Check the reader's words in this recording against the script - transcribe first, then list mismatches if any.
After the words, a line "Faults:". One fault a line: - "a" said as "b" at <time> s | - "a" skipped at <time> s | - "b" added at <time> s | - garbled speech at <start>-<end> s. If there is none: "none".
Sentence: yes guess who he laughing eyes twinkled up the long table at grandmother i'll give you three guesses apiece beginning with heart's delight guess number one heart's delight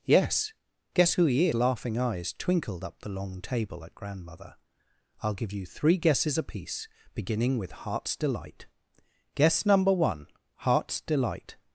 yes guess who he laughing eyes twinkled up the long table at grandmother i'll give you three guesses apiece beginning with heart's delight guess number one heart's delight
Faults:
none